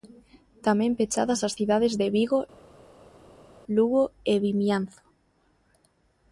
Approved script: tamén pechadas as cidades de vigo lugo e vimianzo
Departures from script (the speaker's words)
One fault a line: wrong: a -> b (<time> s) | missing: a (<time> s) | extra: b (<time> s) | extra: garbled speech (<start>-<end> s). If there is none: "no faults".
no faults